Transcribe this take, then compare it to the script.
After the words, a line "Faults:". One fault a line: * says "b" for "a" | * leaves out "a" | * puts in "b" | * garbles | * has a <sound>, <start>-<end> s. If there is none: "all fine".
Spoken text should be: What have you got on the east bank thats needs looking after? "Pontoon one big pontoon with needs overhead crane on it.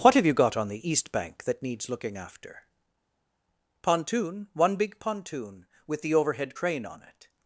What have you got on the east bank that needs looking after? "Pontoon one big pontoon with the overhead crane on it.
Faults:
* says "that" for "thats"
* says "the" for "needs"